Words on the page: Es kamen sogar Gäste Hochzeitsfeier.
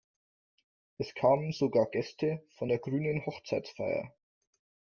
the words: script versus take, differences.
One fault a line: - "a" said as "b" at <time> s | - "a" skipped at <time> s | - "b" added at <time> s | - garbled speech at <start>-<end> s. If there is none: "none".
- "von der grünen" added at 2.6 s